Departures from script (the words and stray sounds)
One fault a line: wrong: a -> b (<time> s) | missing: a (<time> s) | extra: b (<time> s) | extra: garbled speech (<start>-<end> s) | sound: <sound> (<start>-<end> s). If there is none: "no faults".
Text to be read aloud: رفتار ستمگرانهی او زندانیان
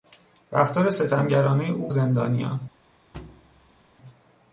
sound: thud (3.1-3.9 s)